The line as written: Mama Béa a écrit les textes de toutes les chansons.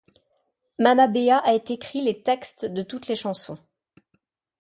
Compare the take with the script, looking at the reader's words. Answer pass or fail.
pass